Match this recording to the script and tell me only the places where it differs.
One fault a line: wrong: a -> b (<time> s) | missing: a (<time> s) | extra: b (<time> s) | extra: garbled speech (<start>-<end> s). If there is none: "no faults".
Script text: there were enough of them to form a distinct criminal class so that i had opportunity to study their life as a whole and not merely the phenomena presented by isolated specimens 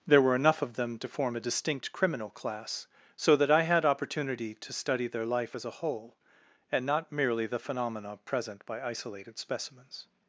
wrong: presented -> present (8.2 s)